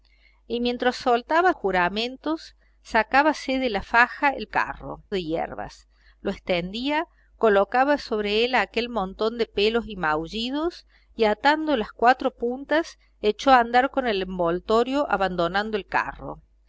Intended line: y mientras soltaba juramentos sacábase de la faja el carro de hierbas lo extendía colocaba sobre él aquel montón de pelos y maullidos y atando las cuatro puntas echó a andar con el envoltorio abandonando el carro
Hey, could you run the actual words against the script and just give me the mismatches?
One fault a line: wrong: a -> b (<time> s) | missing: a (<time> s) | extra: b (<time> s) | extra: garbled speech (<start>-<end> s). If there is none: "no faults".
no faults